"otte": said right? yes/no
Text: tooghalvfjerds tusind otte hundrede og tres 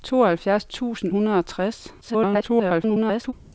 no